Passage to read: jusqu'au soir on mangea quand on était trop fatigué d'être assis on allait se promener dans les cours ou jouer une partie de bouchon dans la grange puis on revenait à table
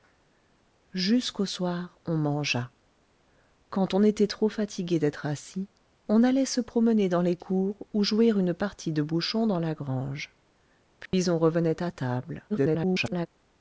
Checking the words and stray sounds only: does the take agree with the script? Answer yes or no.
no